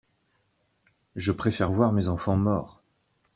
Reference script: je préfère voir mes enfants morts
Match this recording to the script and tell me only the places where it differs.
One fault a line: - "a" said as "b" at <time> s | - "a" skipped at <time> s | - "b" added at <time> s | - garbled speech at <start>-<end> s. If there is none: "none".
none